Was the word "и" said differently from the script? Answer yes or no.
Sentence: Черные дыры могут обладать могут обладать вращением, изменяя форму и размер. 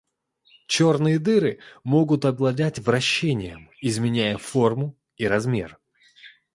no